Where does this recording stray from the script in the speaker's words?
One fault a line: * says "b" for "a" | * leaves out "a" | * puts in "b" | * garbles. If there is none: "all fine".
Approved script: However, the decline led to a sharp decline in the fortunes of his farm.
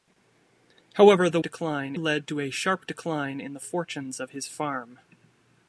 all fine